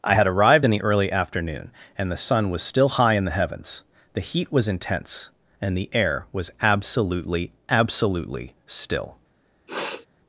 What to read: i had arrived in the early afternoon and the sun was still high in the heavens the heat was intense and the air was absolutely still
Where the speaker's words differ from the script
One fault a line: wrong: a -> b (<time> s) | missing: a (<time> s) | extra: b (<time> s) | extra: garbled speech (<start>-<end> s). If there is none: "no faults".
extra: absolutely (7.7 s)